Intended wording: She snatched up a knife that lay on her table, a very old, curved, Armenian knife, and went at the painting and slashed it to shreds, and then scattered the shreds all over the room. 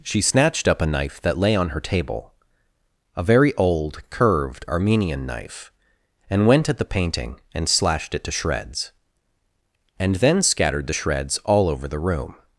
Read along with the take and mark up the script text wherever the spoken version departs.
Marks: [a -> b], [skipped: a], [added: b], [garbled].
She snatched up a knife that lay on her table, a very old, curved, Armenian knife, and went at the painting and slashed it to shreds, and then scattered the shreds all over the room.